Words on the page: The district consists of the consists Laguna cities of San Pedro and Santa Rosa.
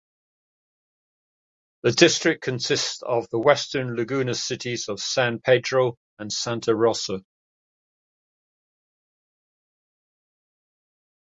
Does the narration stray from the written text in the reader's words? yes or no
yes